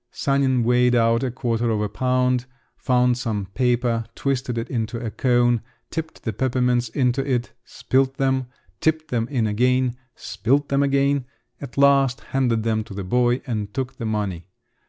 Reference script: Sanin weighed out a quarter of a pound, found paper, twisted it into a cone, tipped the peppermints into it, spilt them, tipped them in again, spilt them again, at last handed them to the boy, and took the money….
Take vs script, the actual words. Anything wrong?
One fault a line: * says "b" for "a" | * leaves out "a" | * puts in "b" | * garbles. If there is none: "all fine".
* puts in "some"